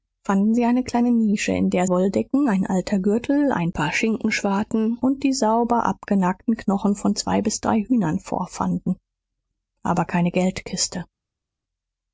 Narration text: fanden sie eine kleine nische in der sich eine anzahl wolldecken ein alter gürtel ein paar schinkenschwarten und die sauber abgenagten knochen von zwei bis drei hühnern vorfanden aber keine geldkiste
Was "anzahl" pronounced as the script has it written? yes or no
no